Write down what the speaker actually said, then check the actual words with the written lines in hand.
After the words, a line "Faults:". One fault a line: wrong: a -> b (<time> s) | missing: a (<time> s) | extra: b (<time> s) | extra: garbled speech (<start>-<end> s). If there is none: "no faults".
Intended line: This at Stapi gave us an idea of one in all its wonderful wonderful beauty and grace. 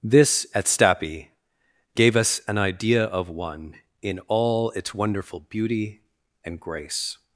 This at Stapi gave us an idea of one in all its wonderful beauty and grace.
Faults:
missing: wonderful (5.4 s)